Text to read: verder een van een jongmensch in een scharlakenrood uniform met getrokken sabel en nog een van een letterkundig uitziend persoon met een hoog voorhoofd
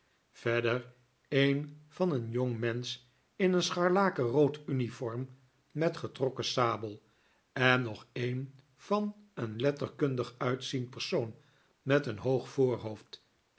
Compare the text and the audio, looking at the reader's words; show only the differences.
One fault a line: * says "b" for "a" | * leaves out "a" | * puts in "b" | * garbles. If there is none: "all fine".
all fine